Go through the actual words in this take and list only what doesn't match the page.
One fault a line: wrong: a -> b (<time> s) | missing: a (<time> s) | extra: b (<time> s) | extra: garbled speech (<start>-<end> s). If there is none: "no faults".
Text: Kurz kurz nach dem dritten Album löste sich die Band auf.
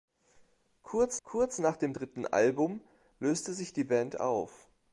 no faults